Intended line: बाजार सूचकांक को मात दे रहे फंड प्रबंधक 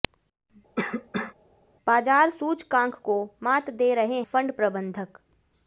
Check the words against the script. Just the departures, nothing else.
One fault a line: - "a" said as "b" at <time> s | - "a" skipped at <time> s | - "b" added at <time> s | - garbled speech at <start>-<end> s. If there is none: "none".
none